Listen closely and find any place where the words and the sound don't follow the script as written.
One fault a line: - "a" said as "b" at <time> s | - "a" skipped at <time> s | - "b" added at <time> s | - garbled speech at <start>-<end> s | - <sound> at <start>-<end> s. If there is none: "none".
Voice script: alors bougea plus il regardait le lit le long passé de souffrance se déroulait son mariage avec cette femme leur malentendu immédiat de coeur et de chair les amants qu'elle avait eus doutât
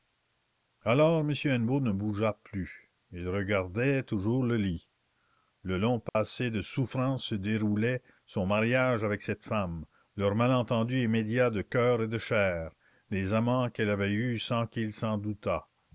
- "m hennebeau ne" added at 1.2 s
- "toujours" added at 4.0 s
- dropout at 6.1-6.2 s
- "sans qu'il s'en" added at 14.4 s